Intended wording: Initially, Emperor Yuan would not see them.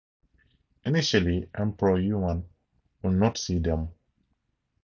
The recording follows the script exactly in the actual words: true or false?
true